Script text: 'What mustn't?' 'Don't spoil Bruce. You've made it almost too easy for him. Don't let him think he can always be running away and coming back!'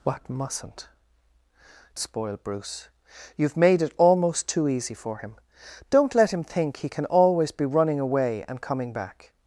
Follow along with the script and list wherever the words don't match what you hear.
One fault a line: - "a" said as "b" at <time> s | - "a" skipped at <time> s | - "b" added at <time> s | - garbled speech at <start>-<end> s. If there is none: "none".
- "Don't" skipped at 0.9 s